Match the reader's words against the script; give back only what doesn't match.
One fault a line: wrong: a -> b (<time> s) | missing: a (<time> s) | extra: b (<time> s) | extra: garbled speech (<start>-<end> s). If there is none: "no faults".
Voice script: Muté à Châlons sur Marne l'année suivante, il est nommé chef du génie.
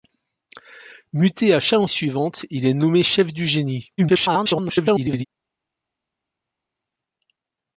missing: sur Marne l'année (1.9 s)
extra: garbled speech (4.0-5.3 s)